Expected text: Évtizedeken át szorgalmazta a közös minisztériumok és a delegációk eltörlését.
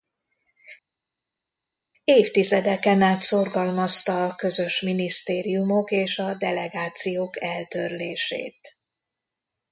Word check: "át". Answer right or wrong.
right